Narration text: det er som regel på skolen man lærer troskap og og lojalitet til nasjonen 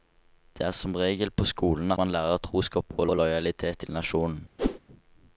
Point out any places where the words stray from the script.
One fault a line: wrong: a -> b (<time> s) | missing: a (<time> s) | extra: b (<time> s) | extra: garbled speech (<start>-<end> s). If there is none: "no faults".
no faults